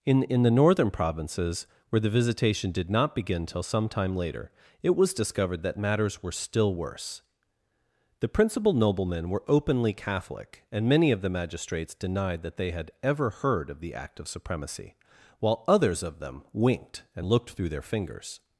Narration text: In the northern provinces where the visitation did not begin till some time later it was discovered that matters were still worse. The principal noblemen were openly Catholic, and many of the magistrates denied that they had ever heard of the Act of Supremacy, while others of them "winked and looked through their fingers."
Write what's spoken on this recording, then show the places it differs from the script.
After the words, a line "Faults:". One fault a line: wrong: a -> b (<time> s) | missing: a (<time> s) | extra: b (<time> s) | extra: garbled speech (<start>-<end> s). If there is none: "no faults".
In in the northern provinces where the visitation did not begin till some time later it was discovered that matters were still worse. The principal noblemen were openly Catholic, and many of the magistrates denied that they had ever heard of the Act of Supremacy, while others of them "winked and looked through their fingers."
Faults:
extra: in (0.2 s)